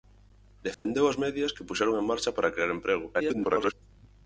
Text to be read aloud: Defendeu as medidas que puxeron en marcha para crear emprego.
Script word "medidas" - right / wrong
right